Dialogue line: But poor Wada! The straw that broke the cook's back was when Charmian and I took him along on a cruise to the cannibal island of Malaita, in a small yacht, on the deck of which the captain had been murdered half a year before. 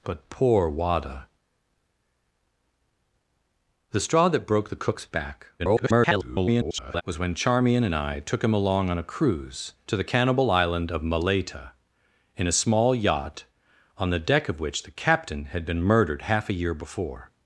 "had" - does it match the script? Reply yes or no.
yes